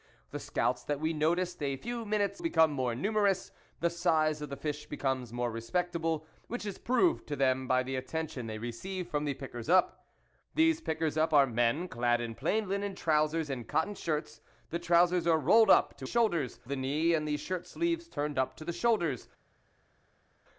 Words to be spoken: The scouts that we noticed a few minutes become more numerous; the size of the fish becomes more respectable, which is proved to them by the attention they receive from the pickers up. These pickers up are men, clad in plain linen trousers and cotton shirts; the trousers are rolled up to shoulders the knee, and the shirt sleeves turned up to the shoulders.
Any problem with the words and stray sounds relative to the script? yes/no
no